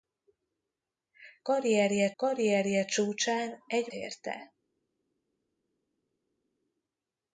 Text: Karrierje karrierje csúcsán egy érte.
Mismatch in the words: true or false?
false